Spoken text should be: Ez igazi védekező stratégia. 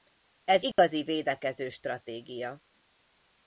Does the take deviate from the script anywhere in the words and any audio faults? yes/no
yes